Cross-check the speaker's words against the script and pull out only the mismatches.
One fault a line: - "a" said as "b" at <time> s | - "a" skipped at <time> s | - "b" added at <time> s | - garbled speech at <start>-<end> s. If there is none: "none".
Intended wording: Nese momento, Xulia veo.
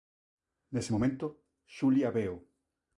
none